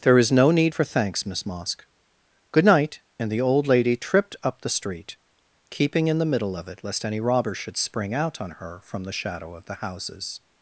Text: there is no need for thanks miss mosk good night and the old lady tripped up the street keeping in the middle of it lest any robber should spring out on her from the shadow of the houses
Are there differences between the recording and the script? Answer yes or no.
no